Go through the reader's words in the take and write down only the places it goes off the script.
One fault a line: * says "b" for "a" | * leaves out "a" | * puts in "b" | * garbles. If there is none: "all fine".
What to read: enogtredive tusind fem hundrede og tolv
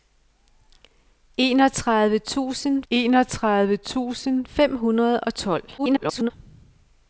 * puts in "enogtredive tusind"
* garbles